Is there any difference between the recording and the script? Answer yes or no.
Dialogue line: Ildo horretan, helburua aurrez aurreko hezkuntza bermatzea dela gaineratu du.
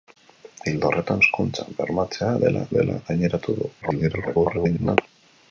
yes